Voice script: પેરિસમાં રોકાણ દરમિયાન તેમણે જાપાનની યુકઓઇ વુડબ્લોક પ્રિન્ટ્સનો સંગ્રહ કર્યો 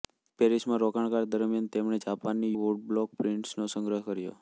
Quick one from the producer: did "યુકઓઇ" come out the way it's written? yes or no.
no